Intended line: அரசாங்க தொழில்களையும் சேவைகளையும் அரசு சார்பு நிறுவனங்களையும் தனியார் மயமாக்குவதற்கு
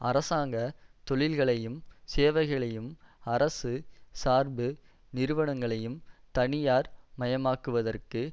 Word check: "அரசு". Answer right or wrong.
right